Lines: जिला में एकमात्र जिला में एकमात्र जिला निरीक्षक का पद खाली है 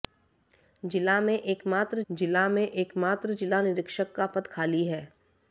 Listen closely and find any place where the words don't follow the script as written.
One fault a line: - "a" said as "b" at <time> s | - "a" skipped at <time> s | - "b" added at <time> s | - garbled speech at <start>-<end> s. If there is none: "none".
none